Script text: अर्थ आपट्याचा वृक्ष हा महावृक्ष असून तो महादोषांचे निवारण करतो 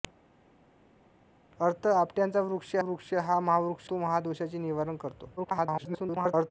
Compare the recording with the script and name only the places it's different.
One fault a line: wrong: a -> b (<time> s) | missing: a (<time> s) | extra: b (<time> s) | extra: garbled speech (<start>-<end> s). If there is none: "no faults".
extra: वृक्ष (2.8 s)
missing: असून (3.9 s)
extra: garbled speech (5.4-6.5 s)